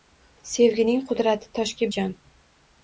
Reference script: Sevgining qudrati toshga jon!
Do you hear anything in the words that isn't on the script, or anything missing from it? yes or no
no